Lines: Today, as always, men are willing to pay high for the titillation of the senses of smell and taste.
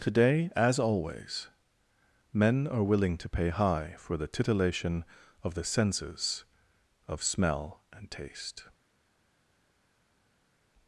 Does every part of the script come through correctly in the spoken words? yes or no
yes